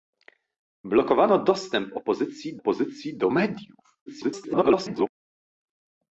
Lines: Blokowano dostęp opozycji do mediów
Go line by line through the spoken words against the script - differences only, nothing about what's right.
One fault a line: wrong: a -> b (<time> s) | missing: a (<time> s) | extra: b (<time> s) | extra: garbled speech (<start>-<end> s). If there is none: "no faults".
extra: opozycji (2.6 s)
extra: garbled speech (4.1-5.1 s)